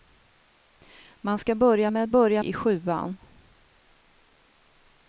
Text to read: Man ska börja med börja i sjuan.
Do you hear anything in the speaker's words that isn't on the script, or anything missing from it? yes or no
no